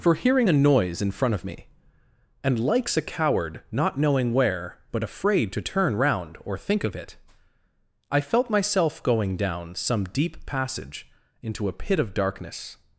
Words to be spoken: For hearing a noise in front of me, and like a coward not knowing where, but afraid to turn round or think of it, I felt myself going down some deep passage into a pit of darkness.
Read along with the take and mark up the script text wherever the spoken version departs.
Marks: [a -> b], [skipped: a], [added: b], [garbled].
For hearing a noise in front of me, and [like -> likes] a coward not knowing where, but afraid to turn round or think of it, I felt myself going down some deep passage into a pit of darkness.